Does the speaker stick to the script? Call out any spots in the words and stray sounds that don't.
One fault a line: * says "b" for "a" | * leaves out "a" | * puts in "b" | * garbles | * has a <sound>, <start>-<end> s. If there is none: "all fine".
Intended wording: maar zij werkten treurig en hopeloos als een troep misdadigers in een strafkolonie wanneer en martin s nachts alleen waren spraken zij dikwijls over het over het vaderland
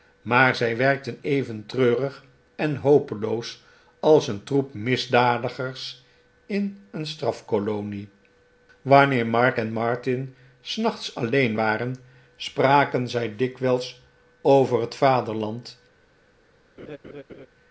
* puts in "even"
* puts in "mark"
* leaves out "over het"
* has a laugh, 16.8-17.5 s